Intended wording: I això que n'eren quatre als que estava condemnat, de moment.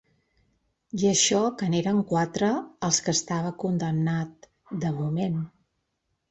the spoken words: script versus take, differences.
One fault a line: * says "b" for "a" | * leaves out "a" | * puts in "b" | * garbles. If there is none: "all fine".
all fine